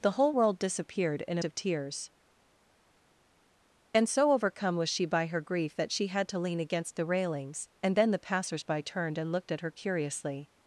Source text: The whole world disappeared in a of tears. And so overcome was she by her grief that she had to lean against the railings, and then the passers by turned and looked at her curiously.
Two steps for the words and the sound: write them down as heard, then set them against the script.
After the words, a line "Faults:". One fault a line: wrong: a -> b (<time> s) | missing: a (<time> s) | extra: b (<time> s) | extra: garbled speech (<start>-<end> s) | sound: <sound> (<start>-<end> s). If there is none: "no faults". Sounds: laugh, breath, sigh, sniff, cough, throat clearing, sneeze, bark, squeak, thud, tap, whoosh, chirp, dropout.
The whole world disappeared in a of tears. And so overcome was she by her grief that she had to lean against the railings, and then the passers by turned and looked at her curiously.
Faults:
no faults